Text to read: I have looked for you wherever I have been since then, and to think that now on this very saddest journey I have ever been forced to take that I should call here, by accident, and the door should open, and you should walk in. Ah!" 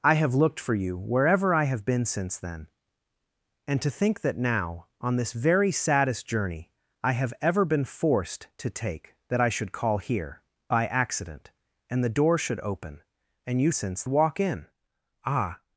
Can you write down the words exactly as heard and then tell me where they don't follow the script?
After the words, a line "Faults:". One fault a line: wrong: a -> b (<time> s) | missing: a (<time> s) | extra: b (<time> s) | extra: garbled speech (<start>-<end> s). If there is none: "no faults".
I have looked for you wherever I have been since then, and to think that now on this very saddest journey I have ever been forced to take that I should call here, by accident, and the door should open, and you since walk in. Ah!"
Faults:
wrong: should -> since (13.7 s)